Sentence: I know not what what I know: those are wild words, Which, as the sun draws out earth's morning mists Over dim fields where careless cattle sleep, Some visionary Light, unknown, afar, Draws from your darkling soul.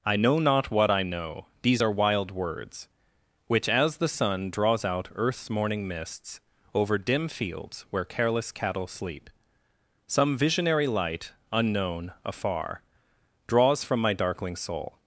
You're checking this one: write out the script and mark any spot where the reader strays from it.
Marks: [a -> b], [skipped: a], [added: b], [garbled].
I know not what [skipped: what] I know: [those -> these] are wild words, Which, as the sun draws out earth's morning mists Over dim fields where careless cattle sleep, Some visionary Light, unknown, afar, Draws from [your -> my] darkling soul.